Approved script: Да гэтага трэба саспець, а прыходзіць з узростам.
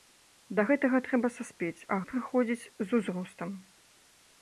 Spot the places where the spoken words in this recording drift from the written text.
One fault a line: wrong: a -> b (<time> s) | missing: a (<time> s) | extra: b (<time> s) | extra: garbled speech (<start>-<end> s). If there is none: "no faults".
no faults